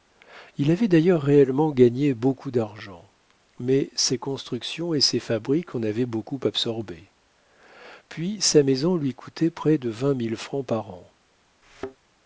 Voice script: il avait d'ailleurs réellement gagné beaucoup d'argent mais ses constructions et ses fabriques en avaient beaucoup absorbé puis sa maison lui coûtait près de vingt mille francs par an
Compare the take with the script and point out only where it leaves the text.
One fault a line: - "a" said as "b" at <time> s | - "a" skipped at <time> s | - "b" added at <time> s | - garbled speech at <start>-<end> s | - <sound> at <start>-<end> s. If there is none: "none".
- thud at 11.6-12.0 s